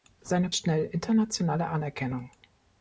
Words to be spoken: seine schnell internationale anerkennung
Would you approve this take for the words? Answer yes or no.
yes